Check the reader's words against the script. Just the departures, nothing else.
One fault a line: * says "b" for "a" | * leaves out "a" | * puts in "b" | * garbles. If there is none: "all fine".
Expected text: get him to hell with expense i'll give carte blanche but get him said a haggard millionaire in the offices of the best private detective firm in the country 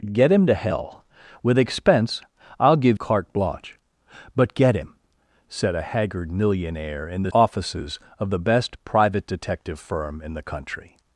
all fine